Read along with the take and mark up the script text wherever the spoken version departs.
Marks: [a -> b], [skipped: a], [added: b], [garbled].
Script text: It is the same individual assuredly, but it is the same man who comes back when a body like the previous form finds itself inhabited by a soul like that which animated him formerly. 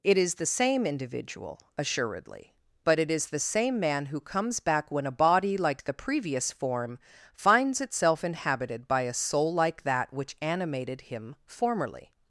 It is the same individual assuredly, but it is the same man who comes back when a body like the previous form finds itself inhabited by a soul like that which animated him formerly.